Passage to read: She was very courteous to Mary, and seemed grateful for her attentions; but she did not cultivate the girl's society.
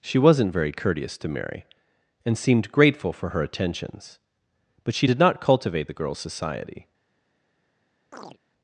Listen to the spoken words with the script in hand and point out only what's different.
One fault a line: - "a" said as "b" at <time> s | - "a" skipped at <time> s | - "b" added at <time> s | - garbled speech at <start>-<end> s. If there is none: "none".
- "was" said as "wasn't" at 0.2 s